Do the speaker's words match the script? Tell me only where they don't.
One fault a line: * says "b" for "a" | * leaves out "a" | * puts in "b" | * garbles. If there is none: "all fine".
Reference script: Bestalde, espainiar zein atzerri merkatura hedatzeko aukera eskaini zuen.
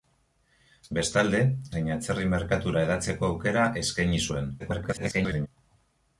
* leaves out "espainiar"
* garbles